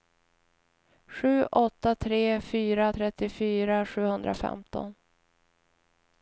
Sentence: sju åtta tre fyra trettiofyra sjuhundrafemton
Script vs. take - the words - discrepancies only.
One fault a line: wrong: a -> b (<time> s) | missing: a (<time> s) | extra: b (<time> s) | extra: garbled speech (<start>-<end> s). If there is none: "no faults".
no faults